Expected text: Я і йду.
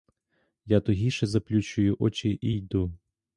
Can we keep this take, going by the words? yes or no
no